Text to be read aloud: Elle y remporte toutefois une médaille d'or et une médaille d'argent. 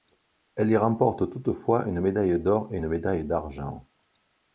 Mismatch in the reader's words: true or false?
false